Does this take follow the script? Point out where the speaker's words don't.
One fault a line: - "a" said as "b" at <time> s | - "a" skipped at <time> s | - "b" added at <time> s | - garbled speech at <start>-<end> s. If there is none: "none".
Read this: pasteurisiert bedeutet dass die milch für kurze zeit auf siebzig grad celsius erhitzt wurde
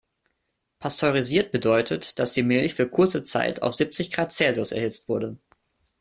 none